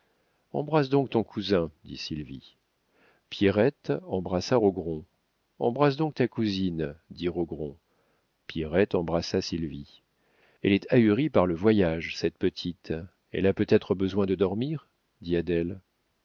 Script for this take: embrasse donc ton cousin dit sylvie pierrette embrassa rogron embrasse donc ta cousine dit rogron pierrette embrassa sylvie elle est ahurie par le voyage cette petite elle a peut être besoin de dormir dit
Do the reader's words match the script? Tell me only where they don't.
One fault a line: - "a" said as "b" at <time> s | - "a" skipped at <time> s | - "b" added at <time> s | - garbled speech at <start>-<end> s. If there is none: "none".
none